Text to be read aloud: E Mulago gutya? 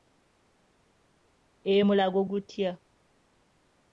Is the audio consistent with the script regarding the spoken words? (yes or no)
yes